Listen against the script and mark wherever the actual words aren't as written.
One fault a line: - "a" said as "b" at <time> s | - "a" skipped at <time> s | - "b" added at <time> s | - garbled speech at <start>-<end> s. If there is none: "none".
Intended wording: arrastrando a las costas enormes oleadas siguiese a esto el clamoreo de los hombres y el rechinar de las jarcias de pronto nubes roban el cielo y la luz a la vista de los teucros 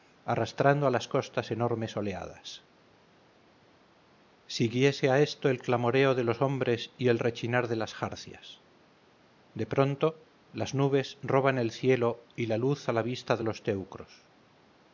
- "las" added at 10.5 s